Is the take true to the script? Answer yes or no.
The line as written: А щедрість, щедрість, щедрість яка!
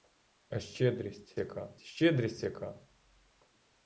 no